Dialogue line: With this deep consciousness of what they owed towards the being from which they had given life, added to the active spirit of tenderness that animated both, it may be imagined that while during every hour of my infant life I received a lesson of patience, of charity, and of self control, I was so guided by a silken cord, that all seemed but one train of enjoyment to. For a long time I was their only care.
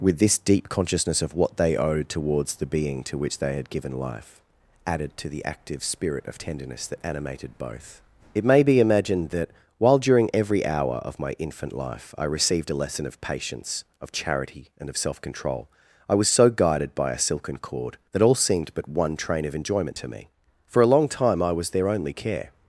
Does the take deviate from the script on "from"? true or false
true